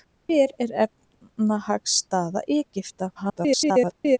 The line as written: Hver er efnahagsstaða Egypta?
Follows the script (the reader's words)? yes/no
no